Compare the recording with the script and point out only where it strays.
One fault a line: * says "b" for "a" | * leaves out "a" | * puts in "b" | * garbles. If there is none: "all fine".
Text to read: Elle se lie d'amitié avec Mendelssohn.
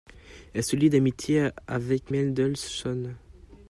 all fine